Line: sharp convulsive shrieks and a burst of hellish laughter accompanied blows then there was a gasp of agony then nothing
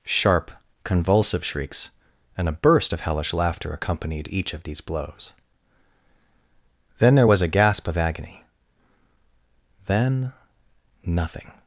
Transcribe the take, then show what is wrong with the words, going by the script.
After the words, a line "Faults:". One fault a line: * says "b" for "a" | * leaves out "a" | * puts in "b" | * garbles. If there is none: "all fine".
sharp convulsive shrieks and a burst of hellish laughter accompanied each of these blows then there was a gasp of agony then nothing
Faults:
* puts in "each of these"